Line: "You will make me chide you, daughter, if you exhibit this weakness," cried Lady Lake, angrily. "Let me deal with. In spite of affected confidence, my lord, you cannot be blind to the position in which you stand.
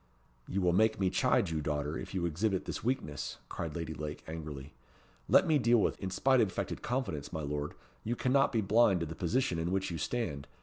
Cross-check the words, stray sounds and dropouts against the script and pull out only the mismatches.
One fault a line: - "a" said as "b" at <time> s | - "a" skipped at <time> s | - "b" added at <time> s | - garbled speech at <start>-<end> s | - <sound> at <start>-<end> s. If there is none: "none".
none